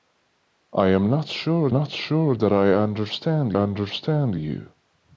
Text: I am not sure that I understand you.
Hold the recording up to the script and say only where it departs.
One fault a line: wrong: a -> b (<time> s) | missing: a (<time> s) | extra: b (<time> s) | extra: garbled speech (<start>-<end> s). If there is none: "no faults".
extra: not sure (1.7 s)
extra: understand (3.5 s)